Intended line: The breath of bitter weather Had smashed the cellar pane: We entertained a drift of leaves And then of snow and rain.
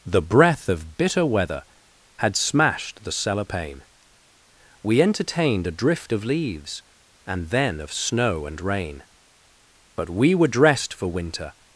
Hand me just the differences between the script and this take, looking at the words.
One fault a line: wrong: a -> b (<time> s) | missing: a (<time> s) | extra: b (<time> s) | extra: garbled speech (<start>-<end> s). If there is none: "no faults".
extra: But we were dressed for winter (9.9 s)